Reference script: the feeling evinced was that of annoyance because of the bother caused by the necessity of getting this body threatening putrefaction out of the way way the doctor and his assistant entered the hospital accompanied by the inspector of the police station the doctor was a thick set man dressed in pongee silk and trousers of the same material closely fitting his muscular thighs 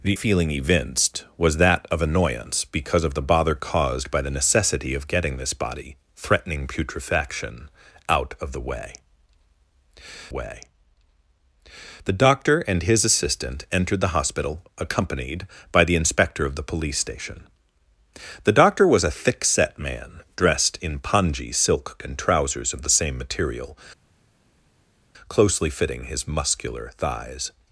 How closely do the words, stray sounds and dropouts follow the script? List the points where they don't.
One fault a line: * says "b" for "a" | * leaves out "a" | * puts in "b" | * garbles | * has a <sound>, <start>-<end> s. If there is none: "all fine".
all fine